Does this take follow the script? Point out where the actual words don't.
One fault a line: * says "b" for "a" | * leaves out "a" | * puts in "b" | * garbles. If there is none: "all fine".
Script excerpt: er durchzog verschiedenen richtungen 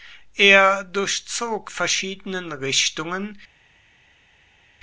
all fine